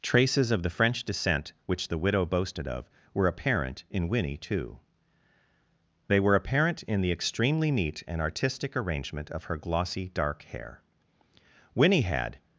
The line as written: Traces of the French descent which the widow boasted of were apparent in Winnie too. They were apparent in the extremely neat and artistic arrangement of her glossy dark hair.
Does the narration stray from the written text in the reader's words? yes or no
yes